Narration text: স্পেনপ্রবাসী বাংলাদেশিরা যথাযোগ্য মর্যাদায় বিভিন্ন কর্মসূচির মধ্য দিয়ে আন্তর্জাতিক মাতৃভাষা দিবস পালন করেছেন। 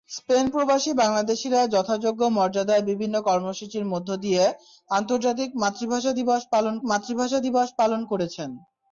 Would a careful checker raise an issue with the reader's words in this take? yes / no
yes